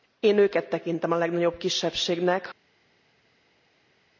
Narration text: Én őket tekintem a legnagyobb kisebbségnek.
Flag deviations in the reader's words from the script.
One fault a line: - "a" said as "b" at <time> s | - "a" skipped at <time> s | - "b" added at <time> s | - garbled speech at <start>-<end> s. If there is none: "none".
none